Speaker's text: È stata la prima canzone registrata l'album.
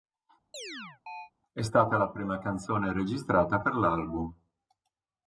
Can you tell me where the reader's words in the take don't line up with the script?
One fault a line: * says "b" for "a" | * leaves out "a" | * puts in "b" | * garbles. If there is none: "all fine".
* puts in "per"